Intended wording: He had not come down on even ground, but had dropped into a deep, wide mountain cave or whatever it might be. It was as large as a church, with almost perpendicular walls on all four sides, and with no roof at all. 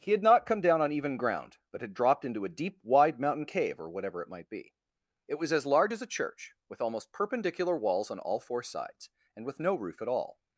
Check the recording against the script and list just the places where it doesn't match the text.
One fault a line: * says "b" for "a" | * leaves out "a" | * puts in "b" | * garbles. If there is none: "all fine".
all fine